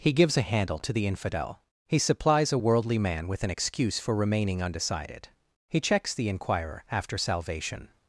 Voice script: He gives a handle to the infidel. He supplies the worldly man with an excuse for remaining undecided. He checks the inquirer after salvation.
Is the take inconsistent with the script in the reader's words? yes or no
yes